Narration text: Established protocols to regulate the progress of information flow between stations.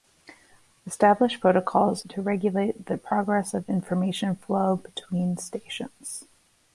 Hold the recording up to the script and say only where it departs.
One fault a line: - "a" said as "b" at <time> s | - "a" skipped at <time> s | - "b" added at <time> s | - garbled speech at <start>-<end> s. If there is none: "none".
none